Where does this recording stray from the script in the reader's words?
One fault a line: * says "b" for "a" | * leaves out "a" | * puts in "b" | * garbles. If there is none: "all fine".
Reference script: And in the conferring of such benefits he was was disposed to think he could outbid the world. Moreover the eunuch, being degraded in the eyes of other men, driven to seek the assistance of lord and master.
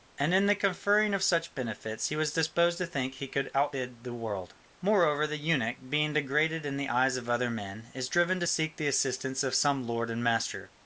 * leaves out "was"
* puts in "is"
* puts in "some"